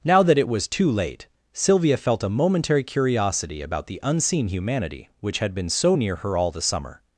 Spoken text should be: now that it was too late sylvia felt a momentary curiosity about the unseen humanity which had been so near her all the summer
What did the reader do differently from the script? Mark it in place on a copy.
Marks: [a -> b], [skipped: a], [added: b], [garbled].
now that it was too late sylvia felt a momentary curiosity about the unseen humanity which had been so near her all the summer